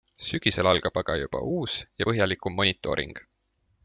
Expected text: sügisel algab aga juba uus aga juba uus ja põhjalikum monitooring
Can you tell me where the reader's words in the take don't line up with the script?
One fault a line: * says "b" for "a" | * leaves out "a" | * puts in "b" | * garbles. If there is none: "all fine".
* leaves out "aga juba uus"